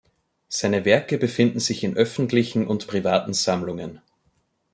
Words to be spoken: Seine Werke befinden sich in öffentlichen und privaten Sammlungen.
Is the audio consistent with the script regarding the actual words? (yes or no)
yes